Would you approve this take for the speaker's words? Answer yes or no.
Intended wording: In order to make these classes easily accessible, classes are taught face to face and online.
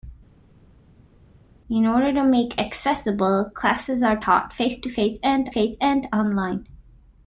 no